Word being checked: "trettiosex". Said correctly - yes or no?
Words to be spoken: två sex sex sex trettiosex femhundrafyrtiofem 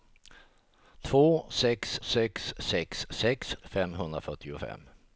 no